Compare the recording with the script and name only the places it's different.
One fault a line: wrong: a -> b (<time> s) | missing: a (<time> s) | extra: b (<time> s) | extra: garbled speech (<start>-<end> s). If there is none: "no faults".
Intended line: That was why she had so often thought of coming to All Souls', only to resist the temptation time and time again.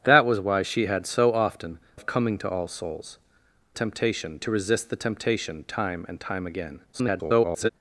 missing: thought (1.8 s)
wrong: only -> temptation (3.7 s)
extra: garbled speech (6.9-7.7 s)